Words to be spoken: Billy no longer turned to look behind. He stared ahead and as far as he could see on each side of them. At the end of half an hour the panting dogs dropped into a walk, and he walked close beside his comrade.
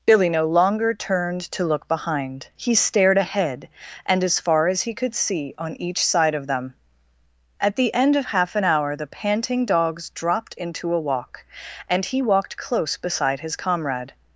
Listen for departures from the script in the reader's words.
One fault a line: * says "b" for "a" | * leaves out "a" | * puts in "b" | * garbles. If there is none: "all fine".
all fine